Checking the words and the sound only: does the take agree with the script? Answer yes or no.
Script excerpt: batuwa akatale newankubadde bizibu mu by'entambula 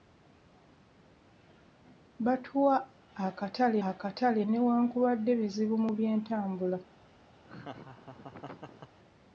no